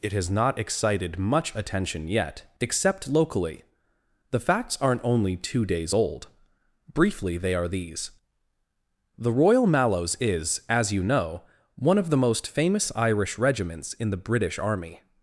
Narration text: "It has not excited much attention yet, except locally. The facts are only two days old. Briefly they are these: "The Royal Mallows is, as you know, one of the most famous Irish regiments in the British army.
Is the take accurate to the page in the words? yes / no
no